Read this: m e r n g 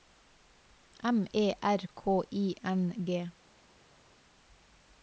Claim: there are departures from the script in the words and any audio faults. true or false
true